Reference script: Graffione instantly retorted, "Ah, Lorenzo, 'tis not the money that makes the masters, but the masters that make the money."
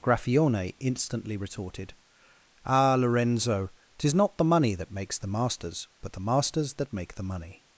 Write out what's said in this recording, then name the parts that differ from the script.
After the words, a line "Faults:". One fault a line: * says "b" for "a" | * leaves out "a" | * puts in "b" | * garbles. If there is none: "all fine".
Graffione instantly retorted, "Ah, Lorenzo, 'tis not the money that makes the masters, but the masters that make the money."
Faults:
all fine